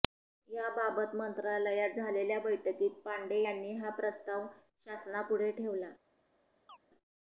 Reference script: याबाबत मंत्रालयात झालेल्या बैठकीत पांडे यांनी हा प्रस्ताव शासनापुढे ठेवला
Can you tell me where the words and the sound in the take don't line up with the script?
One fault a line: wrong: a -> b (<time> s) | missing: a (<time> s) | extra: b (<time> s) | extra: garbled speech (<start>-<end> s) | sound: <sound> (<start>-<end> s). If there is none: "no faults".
sound: chirp (6.7-6.8 s)